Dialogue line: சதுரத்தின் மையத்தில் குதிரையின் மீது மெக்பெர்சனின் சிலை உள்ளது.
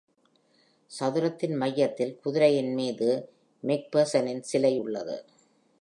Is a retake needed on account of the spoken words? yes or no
no